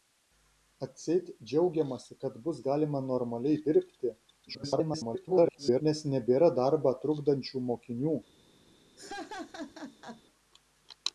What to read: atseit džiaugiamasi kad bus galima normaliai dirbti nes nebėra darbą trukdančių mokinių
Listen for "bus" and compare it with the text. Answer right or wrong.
right